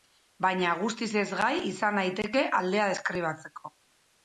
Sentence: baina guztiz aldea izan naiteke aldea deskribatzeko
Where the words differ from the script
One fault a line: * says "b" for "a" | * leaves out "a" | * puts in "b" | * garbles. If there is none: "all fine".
* says "ezgai" for "aldea"